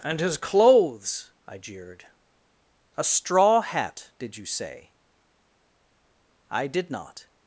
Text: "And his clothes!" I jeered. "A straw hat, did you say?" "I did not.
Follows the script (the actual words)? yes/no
yes